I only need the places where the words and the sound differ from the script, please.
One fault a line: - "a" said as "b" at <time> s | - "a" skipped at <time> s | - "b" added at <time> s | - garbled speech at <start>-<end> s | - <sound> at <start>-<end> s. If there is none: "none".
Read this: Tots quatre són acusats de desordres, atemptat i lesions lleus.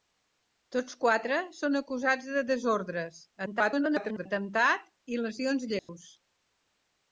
- garbled speech at 3.5-4.3 s
- dropout at 5.8-5.9 s